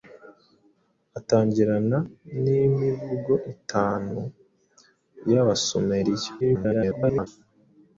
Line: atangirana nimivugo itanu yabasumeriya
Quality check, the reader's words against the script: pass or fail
fail